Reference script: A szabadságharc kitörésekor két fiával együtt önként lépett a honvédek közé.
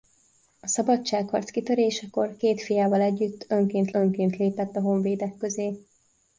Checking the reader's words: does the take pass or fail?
fail